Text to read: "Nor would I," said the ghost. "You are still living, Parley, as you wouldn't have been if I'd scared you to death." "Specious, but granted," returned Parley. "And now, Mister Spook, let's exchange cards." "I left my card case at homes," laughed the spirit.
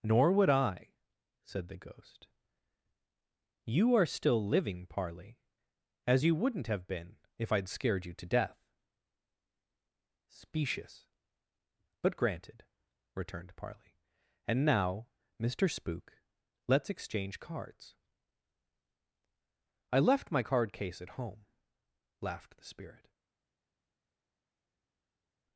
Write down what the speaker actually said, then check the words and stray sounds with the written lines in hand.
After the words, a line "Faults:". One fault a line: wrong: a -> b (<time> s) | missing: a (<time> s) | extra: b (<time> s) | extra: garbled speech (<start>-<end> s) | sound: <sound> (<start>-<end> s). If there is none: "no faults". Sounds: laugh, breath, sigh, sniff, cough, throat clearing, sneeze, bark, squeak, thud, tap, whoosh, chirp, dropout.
"Nor would I," said the ghost. "You are still living, Parley, as you wouldn't have been if I'd scared you to death." "Specious, but granted," returned Parley. "And now, Mister Spook, let's exchange cards." "I left my card case at home," laughed the spirit.
Faults:
wrong: homes -> home (21.2 s)